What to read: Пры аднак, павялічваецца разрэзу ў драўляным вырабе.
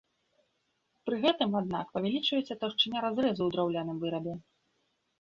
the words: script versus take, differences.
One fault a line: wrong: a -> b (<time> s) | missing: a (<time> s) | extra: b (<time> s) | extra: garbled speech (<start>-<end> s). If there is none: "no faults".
extra: гэтым (1.2 s)
extra: таўшчыня (2.6 s)